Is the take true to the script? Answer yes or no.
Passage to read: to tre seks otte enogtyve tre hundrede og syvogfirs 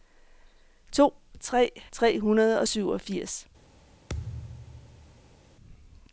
no